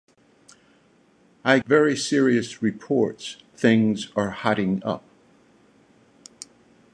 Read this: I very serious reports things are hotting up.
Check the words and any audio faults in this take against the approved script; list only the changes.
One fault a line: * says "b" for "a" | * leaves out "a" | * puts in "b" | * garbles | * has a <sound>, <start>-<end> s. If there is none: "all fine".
all fine